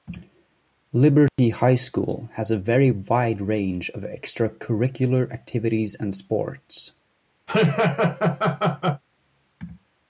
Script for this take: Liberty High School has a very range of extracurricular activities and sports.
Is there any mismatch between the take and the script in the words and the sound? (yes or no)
yes